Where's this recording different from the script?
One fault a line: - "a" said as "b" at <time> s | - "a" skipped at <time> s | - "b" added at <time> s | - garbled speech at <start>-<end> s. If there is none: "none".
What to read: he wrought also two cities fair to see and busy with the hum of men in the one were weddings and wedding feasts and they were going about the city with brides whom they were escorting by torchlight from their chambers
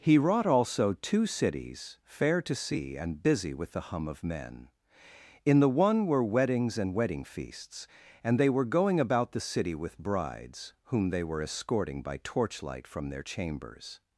none